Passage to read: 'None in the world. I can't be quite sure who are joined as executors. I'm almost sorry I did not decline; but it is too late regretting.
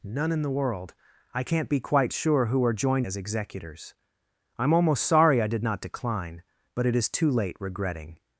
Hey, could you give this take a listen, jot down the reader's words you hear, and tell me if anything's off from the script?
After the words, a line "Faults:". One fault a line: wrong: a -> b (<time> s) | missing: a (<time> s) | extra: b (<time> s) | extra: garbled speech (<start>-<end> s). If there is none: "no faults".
'None in the world. I can't be quite sure who are joined as executors. I'm almost sorry I did not decline; but it is too late regretting.
Faults:
no faults